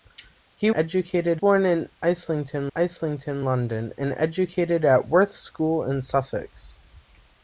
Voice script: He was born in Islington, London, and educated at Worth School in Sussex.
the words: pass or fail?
fail